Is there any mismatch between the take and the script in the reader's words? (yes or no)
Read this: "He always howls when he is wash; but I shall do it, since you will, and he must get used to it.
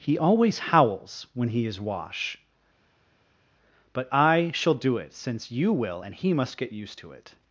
no